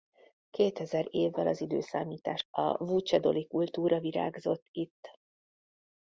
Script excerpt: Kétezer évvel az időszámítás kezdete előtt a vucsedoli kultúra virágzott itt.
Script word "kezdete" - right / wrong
wrong